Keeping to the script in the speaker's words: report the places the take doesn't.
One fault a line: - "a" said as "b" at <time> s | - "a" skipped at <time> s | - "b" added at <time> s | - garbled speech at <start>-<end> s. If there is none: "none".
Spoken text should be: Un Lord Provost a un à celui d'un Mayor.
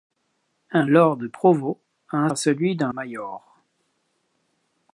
none